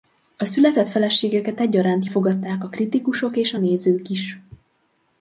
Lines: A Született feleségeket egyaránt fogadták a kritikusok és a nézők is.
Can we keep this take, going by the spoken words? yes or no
yes